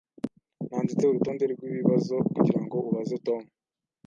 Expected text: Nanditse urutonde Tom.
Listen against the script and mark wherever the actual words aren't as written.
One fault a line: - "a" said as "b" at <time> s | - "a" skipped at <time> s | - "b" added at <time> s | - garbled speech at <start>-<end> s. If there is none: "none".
- "rwibibazo kugirango ubaze" added at 1.5 s